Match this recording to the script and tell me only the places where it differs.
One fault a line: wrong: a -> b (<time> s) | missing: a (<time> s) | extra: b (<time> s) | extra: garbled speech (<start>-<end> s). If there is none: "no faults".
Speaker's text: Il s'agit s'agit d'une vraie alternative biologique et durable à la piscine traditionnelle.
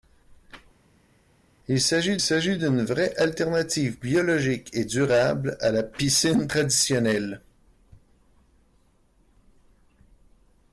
no faults